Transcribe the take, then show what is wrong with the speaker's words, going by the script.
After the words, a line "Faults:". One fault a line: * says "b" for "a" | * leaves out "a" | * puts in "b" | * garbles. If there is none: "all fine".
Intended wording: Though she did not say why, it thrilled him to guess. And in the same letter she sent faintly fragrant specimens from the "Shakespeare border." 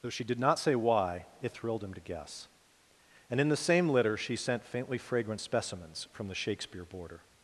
Though she did not say why, it thrilled him to guess. And in the same litter she sent faintly fragrant specimens from the "Shakespeare border."
Faults:
* says "litter" for "letter"